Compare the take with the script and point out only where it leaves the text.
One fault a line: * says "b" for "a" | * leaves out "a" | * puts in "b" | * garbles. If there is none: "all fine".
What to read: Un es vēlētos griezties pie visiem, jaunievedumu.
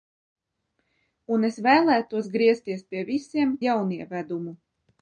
all fine